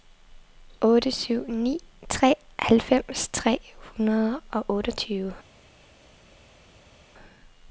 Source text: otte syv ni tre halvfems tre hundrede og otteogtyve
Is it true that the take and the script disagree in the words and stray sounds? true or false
false